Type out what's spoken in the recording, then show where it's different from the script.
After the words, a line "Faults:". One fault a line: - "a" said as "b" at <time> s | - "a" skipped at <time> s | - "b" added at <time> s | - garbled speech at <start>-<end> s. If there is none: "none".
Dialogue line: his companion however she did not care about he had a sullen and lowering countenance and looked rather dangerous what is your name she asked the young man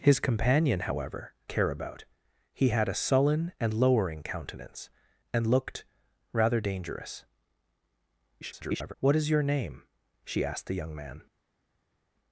his companion however care about he had a sullen and lowering countenance and looked rather dangerous [garbled] what is your name she asked the young man
Faults:
- "she did not" skipped at 1.4 s
- garbled speech at 8.4-8.9 s